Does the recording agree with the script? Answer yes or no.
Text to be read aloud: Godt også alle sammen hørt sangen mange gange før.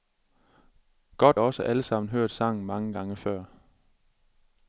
yes